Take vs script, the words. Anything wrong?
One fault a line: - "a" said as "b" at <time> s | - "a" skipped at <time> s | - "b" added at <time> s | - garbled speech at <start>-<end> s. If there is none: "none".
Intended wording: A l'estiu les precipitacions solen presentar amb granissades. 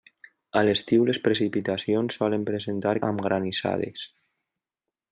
none